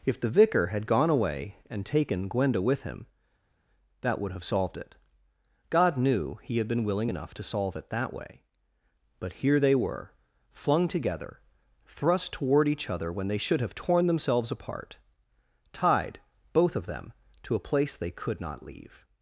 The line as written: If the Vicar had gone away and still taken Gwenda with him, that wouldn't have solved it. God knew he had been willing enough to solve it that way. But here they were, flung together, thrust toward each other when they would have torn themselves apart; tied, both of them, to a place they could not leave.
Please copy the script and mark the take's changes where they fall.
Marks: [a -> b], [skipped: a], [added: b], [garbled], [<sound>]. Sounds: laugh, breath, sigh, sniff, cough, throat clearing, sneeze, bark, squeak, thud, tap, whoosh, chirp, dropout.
If the Vicar had gone away and [skipped: still] taken Gwenda with him, that [wouldn't -> would] have solved it. God knew he had been willing enough to solve it that way. But here they were, flung together, thrust toward each other when they [would -> should] have torn themselves apart; tied, both of them, to a place they could not leave.